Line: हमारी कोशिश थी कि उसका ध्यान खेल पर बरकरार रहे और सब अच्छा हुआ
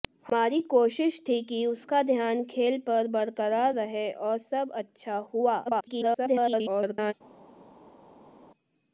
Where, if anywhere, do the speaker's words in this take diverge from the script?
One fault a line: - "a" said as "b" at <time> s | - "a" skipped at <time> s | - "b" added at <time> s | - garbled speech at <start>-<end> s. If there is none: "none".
- garbled speech at 5.7-7.1 s